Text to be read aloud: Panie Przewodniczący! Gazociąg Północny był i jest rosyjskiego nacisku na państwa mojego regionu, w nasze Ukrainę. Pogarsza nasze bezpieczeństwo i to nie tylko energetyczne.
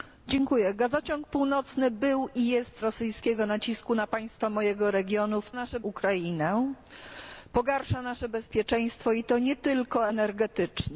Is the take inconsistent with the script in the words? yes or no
no